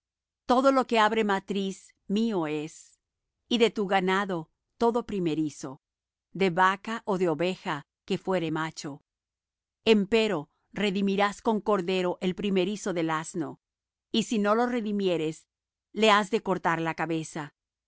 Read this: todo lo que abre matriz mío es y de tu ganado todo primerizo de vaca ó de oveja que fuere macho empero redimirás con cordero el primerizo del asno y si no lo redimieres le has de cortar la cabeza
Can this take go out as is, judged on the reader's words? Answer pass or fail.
pass